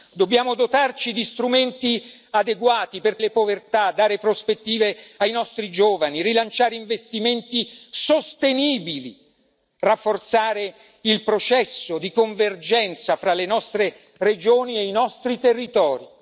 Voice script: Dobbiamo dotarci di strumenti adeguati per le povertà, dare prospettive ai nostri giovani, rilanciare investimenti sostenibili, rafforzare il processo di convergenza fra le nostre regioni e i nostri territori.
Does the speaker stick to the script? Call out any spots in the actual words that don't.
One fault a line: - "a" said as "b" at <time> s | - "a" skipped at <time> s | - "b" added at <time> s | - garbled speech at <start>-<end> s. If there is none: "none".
none